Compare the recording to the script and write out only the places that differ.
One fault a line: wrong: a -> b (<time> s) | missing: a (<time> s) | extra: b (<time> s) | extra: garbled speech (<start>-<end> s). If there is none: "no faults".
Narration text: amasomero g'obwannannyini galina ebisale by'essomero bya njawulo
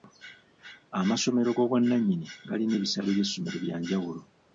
no faults